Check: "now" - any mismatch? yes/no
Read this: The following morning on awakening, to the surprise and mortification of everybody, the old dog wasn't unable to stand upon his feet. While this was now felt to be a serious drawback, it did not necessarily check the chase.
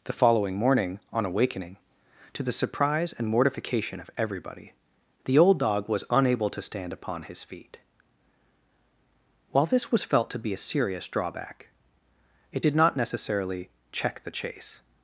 yes